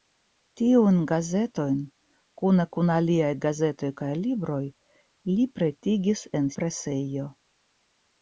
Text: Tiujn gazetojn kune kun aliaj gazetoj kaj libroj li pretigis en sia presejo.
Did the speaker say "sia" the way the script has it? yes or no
no